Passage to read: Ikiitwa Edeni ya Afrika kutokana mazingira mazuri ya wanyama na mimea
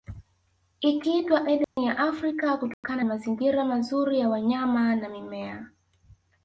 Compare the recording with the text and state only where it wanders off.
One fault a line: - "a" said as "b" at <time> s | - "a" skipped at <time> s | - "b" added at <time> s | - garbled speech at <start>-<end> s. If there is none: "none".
none